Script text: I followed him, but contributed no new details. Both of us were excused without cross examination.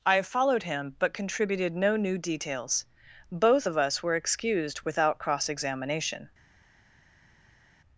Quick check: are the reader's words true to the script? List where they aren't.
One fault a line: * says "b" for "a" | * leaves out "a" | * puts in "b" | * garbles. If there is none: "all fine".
all fine